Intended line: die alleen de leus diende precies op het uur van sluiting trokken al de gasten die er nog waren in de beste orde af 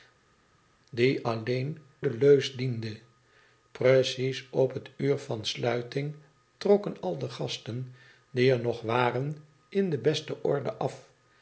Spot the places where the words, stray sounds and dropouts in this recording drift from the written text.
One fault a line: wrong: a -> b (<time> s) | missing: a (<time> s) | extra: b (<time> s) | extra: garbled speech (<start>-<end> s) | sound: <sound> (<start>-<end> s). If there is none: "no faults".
no faults